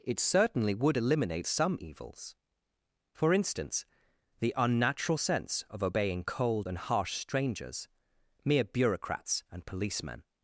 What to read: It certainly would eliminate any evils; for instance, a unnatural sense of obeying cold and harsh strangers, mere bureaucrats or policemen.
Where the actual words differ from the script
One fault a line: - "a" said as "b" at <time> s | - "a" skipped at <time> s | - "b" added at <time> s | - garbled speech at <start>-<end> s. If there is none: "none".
- "any" said as "some" at 1.5 s
- "a" said as "the" at 4.4 s
- "or" said as "and" at 9.5 s